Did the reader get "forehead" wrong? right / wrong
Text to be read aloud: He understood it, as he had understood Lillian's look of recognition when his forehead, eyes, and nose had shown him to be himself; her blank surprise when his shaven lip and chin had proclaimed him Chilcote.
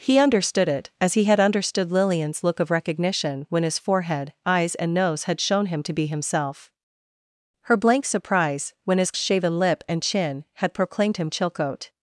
right